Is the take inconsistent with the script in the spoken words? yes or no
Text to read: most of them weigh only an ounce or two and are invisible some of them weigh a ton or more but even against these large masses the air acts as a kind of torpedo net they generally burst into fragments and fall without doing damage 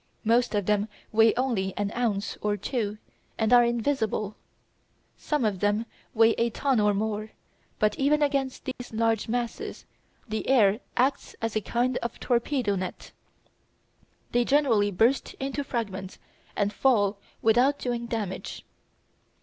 no